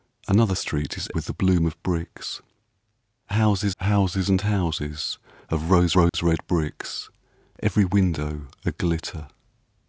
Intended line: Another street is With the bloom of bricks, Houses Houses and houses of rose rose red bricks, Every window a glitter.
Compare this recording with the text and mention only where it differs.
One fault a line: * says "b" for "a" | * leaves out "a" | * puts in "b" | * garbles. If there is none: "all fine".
all fine